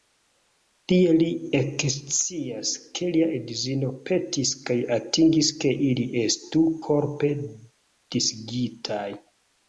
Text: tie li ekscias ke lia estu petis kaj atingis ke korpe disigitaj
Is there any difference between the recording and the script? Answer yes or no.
yes